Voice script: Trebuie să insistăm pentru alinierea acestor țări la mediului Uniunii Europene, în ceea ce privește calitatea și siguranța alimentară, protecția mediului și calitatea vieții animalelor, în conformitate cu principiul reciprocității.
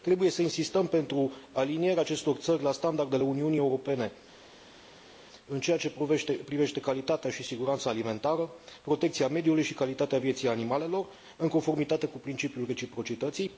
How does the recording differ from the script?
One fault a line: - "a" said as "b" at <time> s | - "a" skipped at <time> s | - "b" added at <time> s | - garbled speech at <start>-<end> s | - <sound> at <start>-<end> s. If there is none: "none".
- "mediului" said as "standardele" at 2.7 s